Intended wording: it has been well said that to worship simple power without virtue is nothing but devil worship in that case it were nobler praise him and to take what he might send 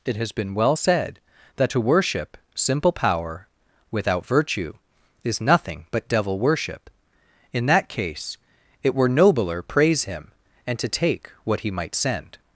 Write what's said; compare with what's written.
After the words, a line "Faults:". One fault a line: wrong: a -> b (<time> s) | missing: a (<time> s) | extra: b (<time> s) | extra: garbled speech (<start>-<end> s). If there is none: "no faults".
it has been well said that to worship simple power without virtue is nothing but devil worship in that case it were nobler praise him and to take what he might send
Faults:
no faults